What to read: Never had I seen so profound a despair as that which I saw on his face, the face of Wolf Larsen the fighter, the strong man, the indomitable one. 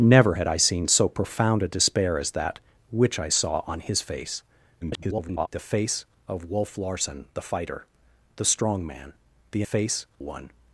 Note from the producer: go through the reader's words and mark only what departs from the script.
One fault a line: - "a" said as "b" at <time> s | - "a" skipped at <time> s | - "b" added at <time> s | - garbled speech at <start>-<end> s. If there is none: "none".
- garbled speech at 4.8-5.5 s
- "indomitable" said as "face" at 9.6 s